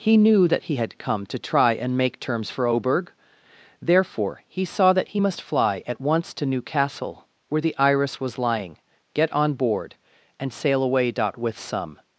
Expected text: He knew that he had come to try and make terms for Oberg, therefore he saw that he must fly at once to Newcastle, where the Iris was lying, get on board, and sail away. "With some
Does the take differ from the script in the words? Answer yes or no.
no